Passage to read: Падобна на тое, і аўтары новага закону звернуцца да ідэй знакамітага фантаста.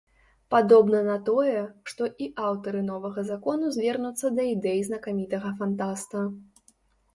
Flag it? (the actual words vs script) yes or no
yes